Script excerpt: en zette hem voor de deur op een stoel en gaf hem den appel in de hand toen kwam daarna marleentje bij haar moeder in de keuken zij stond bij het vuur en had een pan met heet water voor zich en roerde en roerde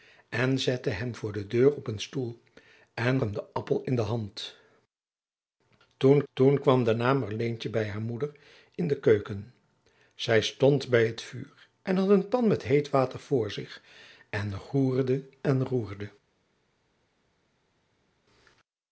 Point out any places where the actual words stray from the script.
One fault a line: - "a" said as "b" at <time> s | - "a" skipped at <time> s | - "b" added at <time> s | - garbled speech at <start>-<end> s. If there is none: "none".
- "gaf" skipped at 3.2 s
- "toen" added at 6.3 s